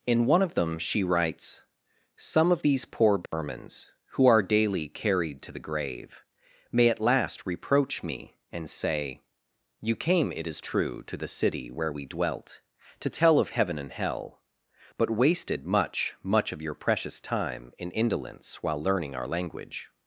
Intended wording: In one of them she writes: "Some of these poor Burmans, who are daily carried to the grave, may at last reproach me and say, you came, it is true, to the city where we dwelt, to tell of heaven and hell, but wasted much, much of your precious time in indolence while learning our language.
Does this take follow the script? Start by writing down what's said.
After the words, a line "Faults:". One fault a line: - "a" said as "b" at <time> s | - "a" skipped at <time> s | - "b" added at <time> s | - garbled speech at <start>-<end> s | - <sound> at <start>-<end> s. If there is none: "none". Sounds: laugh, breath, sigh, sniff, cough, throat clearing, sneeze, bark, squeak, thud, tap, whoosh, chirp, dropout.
In one of them she writes: "Some of these poor Burmans, who are daily carried to the grave, may at last reproach me and say, you came, it is true, to the city where we dwelt, to tell of heaven and hell, but wasted much, much of your precious time in indolence while learning our language.
Faults:
- dropout at 3.3-3.3 s